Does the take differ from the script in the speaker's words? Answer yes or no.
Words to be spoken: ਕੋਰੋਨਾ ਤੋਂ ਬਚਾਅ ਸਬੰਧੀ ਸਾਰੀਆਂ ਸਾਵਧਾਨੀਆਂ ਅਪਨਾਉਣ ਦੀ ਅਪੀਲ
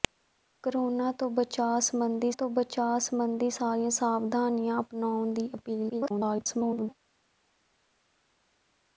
yes